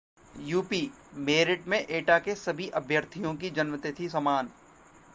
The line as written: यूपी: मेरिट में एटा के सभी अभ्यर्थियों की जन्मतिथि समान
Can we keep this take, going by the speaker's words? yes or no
yes